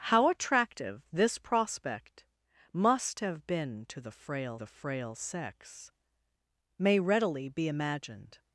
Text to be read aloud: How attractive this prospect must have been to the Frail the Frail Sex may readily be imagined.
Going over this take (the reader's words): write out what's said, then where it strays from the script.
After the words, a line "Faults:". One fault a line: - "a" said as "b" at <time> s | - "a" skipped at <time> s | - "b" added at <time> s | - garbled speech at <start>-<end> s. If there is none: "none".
How attractive this prospect must have been to the Frail the Frail Sex may readily be imagined.
Faults:
none